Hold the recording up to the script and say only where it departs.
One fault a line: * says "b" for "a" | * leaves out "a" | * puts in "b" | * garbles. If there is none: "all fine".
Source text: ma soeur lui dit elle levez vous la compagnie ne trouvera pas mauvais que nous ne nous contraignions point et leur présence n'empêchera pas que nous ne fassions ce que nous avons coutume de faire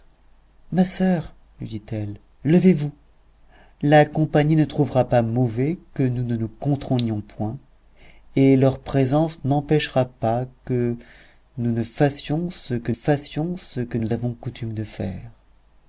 * puts in "fassions ce que"